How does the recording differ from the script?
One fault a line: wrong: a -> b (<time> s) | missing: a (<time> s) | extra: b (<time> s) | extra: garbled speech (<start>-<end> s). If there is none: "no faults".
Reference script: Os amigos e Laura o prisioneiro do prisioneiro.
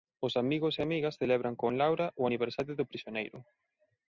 extra: amigas celebran con (0.9 s)
wrong: prisioneiro -> aniversario (2.3 s)